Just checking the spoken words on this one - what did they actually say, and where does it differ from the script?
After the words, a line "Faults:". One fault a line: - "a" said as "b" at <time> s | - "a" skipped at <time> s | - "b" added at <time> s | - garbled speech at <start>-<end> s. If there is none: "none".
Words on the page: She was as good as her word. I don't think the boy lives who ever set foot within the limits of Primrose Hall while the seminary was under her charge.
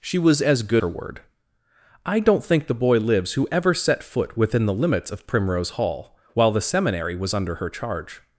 She was as good her word. I don't think the boy lives who ever set foot within the limits of Primrose Hall while the seminary was under her charge.
Faults:
- "as" skipped at 0.8 s